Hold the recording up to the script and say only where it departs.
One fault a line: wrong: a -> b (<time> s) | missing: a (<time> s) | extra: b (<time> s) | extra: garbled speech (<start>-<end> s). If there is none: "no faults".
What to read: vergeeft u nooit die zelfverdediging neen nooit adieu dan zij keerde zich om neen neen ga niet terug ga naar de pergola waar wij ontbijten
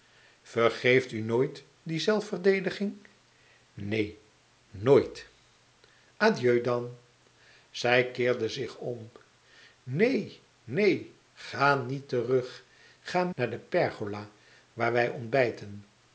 no faults